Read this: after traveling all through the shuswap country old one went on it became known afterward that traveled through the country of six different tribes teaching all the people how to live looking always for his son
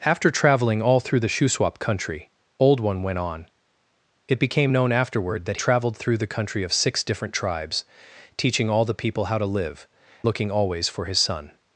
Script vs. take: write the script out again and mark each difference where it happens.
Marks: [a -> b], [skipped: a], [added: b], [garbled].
after traveling all through the shuswap country old one went on it became known afterward that traveled through the country of six different tribes teaching all the people how to live looking always for his son